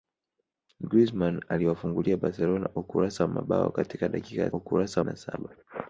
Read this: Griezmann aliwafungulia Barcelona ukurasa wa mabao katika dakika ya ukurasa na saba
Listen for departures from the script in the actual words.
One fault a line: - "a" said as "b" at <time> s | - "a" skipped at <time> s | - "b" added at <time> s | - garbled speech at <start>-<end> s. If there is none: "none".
none